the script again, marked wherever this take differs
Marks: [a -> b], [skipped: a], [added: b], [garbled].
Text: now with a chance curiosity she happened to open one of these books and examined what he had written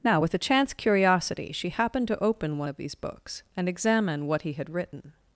now with a chance curiosity she happened to open one of these books and [examined -> examine] what he had written